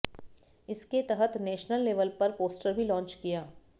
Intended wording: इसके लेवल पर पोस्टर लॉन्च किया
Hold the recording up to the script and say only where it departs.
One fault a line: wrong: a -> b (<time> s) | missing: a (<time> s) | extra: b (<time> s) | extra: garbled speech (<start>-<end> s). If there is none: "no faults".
extra: तहत नेशनल (1.1 s)
extra: भी (2.7 s)